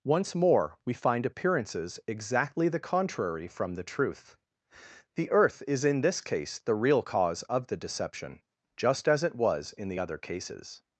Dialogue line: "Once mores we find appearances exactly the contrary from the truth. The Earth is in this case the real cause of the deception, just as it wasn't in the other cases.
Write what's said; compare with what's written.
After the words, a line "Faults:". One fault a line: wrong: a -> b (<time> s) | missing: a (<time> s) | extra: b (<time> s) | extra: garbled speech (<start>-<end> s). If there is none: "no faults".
"Once more we find appearances exactly the contrary from the truth. The Earth is in this case the real cause of the deception, just as it was in the other cases.
Faults:
wrong: mores -> more (0.3 s)
wrong: wasn't -> was (9.3 s)